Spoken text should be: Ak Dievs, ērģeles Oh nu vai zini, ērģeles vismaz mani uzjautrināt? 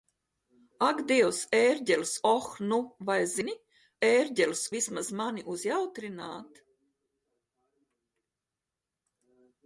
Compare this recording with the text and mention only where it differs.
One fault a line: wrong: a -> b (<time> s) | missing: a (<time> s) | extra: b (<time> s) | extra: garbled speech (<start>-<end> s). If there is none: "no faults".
no faults